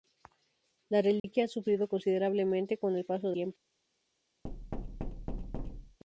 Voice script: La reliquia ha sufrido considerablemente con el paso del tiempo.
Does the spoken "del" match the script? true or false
false